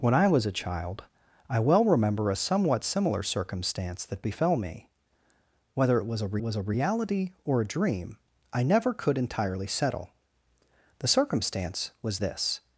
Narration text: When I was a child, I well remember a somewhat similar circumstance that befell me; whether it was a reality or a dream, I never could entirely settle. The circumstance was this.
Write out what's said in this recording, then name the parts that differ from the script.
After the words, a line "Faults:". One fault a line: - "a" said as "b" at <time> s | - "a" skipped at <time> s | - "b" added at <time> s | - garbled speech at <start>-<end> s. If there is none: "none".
When I was a child, I well remember a somewhat similar circumstance that befell me; whether it was a was a reality or a dream, I never could entirely settle. The circumstance was this.
Faults:
- "was a" added at 6.4 s